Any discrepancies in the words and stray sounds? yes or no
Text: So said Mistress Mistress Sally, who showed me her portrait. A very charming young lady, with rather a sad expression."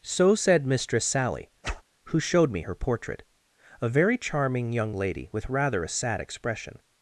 yes